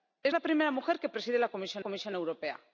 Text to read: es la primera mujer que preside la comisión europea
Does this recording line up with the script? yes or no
no